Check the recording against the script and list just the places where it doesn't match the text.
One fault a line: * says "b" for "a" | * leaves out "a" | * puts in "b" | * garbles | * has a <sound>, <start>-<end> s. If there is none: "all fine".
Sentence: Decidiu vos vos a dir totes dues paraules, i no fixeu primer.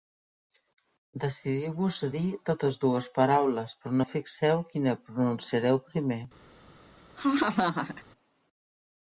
* leaves out "vos"
* says "però" for "i"
* puts in "quina pronunciareu"
* has a laugh, 7.2-8.0 s